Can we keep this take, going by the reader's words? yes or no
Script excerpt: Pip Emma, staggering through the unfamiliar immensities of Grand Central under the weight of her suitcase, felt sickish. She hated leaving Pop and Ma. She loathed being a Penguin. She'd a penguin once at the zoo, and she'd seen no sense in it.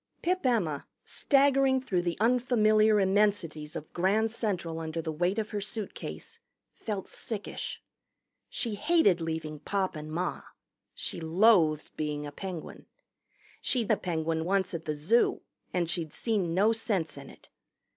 yes